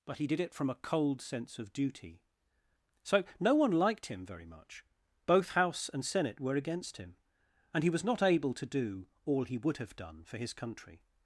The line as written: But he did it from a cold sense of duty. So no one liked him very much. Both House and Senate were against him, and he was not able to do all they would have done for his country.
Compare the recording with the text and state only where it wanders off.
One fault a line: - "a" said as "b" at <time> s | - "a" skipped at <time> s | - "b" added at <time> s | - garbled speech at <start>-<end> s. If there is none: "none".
- "they" said as "he" at 9.4 s